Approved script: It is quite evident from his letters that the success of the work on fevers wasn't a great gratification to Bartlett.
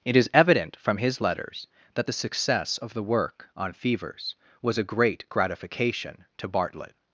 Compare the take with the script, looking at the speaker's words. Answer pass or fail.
fail